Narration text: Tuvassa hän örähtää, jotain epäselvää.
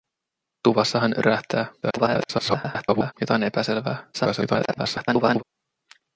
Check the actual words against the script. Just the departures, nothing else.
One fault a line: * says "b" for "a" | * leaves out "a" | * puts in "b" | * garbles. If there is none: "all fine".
* garbles
* garbles